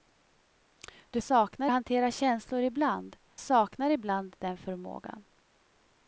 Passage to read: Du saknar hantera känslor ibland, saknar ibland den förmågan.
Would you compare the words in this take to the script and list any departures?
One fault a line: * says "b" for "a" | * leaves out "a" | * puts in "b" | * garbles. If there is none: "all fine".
all fine